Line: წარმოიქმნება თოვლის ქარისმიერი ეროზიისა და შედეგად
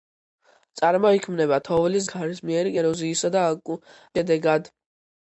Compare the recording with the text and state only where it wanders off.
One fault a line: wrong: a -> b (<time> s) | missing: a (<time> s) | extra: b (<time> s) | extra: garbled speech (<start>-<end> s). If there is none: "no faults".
no faults